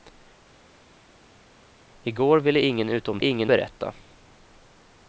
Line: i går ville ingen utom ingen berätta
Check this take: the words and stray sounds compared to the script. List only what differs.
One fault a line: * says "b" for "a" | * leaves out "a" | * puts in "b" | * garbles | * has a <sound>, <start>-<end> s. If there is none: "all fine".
all fine